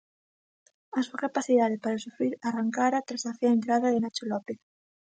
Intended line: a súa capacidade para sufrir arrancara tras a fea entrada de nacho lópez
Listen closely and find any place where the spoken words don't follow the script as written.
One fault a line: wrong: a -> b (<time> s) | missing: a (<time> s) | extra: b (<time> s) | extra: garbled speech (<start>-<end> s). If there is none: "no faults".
no faults